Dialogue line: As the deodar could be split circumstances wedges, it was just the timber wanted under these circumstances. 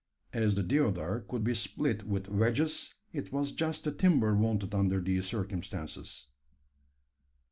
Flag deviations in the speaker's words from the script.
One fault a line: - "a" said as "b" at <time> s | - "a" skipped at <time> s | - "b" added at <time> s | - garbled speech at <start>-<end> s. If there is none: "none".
- "circumstances" said as "with" at 2.0 s